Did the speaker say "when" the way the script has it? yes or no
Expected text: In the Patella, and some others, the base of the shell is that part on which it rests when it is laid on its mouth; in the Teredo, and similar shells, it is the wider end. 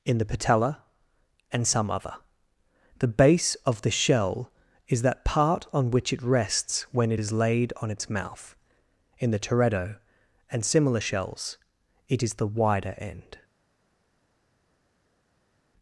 yes